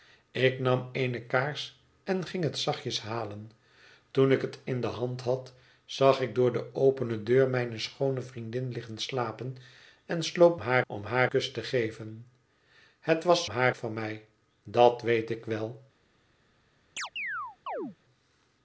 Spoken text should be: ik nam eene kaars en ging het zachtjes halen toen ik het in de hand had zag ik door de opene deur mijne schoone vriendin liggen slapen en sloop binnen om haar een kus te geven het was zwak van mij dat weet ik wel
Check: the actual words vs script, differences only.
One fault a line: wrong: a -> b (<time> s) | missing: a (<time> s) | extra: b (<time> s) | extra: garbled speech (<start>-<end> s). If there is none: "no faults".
wrong: binnen -> haar (10.6 s)
missing: een (11.3 s)
wrong: zwak -> haar (13.5 s)